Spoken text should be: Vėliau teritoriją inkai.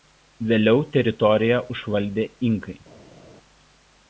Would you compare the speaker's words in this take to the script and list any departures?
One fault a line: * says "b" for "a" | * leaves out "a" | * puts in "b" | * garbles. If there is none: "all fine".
* puts in "užvaldė"